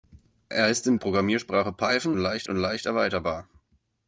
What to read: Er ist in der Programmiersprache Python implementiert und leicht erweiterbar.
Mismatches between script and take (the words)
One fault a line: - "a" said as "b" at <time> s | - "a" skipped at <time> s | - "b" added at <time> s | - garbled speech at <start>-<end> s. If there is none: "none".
- "der" skipped at 1.0 s
- "implementiert" said as "leicht" at 2.2 s